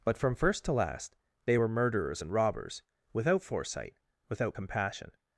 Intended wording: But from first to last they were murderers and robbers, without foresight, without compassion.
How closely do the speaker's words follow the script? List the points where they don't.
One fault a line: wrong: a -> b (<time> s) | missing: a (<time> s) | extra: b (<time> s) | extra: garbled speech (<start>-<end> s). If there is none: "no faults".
no faults